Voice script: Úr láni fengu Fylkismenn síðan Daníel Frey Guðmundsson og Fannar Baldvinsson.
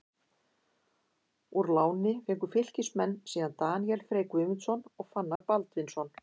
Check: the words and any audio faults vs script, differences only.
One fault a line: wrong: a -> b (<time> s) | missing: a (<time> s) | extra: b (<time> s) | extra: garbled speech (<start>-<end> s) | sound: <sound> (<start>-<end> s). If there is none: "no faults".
sound: dropout (5.4-5.4 s)